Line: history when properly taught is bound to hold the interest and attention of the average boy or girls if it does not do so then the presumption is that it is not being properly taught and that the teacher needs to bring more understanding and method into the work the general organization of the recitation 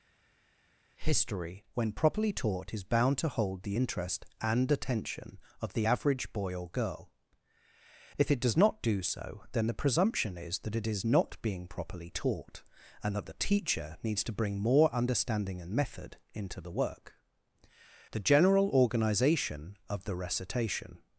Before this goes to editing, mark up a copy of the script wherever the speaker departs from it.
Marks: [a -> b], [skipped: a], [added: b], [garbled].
history when properly taught is bound to hold the interest and attention of the average boy or [girls -> girl] if it does not do so then the presumption is that it is not being properly taught and that the teacher needs to bring more understanding and method into the work the general organization of the recitation